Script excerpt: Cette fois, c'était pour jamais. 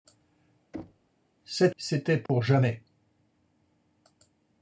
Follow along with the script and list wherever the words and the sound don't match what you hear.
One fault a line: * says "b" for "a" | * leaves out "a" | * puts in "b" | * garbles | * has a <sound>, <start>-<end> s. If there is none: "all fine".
* has a thud, 0.7-1.1 s
* leaves out "fois"
* has a dropout, 2.3-2.3 s